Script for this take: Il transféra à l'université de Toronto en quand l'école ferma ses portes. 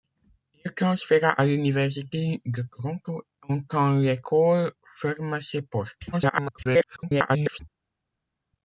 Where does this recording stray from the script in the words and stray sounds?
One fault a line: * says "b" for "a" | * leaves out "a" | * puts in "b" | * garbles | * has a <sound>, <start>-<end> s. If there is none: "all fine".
* garbles